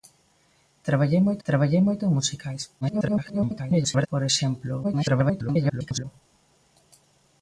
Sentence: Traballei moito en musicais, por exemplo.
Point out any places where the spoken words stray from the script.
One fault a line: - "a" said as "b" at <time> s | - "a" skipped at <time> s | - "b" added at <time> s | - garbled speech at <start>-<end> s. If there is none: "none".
- "traballei moito" added at 1.5 s
- garbled speech at 2.8-4.1 s
- garbled speech at 4.8-6.0 s